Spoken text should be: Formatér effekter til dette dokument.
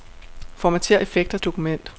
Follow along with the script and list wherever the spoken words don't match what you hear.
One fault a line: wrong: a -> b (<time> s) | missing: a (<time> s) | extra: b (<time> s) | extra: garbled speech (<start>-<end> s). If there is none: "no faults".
missing: til dette (1.4 s)